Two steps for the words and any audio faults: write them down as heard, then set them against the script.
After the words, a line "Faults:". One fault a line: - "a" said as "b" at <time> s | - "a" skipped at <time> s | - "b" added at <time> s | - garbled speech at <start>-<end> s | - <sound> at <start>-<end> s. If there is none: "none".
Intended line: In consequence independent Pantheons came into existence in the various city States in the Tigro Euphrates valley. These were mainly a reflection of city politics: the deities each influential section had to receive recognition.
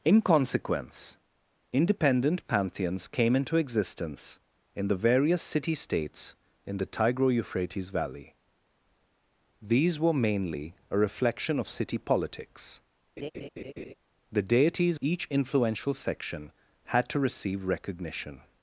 In consequence independent Pantheons came into existence in the various city States in the Tigro Euphrates valley. These were mainly a reflection of city politics: the deities each influential section had to receive recognition.
Faults:
- laugh at 13.2-13.9 s